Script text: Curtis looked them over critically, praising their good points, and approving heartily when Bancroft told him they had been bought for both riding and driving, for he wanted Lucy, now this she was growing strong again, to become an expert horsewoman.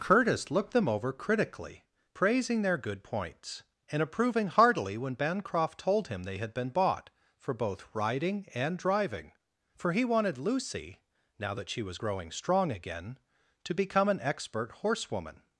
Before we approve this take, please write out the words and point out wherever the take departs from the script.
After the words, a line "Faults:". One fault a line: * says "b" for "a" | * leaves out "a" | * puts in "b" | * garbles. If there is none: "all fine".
Curtis looked them over critically, praising their good points, and approving heartily when Bancroft told him they had been bought for both riding and driving, for he wanted Lucy, now that she was growing strong again, to become an expert horsewoman.
Faults:
* says "that" for "this"